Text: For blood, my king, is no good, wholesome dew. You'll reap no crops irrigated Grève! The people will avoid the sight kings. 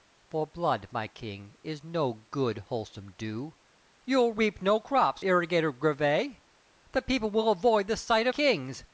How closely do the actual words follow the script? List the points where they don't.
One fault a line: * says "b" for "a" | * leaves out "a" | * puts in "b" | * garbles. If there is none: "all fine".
all fine